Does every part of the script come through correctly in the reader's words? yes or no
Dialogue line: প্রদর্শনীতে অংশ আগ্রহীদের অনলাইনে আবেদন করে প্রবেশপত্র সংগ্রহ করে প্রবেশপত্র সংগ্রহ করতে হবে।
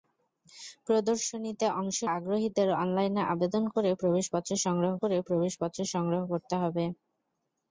yes